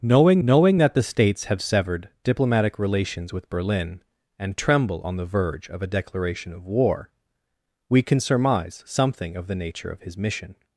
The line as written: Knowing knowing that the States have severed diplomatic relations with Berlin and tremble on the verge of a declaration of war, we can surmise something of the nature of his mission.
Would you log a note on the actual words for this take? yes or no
no